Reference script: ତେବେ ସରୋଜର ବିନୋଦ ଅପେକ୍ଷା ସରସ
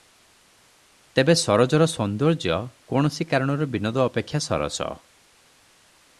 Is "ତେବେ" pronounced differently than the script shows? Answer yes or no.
no